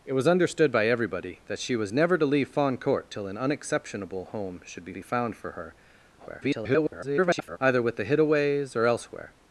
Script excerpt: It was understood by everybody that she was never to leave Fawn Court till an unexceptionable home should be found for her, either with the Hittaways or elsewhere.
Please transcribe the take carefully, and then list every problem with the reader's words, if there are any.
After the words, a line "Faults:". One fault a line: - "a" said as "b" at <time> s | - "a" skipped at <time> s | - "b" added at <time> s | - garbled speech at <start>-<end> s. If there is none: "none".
It was understood by everybody that she was never to leave Fawn Court till an unexceptionable home should be be found for her, [garbled] either with the Hittaways or elsewhere.
Faults:
- "be" added at 4.9 s
- garbled speech at 6.2-7.6 s